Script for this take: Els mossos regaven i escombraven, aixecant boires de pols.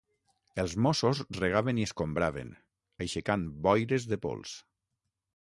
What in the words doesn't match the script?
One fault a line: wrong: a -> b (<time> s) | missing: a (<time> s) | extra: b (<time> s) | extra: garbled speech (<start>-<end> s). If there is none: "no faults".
no faults